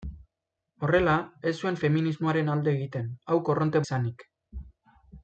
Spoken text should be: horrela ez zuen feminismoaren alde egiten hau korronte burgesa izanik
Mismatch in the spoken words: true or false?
true